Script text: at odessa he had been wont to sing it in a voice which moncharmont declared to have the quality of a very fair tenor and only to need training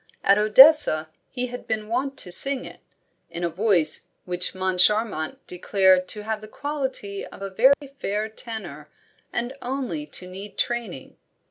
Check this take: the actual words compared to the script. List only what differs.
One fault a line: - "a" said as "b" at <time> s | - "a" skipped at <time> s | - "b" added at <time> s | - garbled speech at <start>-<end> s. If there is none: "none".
none